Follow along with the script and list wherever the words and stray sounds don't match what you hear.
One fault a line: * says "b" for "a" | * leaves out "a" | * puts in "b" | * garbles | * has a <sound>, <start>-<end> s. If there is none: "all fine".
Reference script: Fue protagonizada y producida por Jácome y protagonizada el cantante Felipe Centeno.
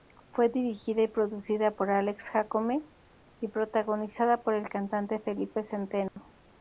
* says "dirigida" for "protagonizada"
* puts in "Alex"
* puts in "por"
* has a dropout, 6.1-6.2 s